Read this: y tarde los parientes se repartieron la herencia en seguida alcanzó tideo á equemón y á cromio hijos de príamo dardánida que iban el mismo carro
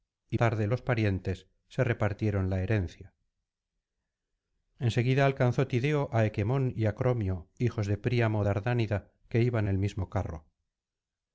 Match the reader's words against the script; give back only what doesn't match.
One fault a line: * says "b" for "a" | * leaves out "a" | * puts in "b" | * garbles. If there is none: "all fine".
all fine